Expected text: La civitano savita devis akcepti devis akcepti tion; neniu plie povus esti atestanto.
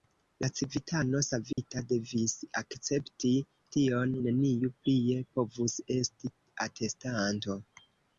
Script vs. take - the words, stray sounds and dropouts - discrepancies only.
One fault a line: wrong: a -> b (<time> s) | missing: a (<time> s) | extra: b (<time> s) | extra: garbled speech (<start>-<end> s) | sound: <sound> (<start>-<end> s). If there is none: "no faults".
sound: dropout (1.5-1.6 s)
missing: devis akcepti (3.3 s)